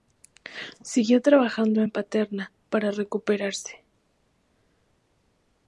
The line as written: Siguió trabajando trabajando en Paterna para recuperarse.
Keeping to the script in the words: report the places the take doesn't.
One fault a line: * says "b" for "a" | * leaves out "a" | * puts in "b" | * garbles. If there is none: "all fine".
* leaves out "trabajando"